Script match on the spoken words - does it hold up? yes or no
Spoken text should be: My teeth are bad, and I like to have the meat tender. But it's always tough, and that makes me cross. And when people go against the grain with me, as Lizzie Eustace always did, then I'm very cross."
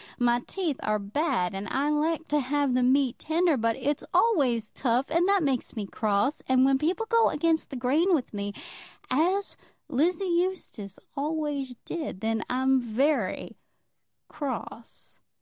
yes